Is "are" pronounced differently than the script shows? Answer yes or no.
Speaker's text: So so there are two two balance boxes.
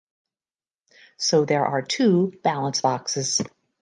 no